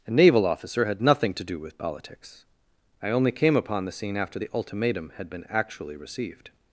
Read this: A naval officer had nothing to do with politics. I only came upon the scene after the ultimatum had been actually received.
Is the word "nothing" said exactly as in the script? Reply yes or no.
yes